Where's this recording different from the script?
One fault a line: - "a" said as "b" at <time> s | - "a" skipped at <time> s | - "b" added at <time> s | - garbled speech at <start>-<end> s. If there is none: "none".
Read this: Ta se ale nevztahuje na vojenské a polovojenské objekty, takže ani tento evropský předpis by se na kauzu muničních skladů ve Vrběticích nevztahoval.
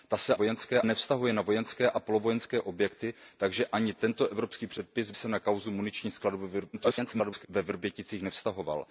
- "ale" said as "vojenské" at 0.3 s
- "by" skipped at 5.1 s
- garbled speech at 6.7-7.5 s